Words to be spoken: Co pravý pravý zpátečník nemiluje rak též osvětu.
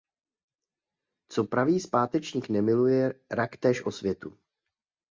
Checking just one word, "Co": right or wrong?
right